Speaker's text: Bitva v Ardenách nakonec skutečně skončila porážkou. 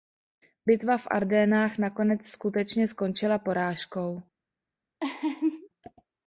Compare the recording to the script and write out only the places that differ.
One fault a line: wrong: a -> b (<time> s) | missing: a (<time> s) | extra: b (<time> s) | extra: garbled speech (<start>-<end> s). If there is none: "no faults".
no faults